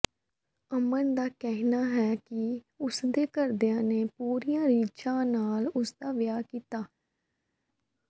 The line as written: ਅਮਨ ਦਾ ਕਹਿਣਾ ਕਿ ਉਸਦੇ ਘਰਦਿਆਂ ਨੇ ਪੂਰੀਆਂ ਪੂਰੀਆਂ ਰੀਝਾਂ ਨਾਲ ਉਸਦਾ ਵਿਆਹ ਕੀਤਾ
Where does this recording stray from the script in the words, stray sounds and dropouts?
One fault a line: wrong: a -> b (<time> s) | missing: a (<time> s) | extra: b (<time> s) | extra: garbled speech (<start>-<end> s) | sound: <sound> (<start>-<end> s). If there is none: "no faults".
extra: ਹੈ (1.9 s)
missing: ਪੂਰੀਆਂ (4.7 s)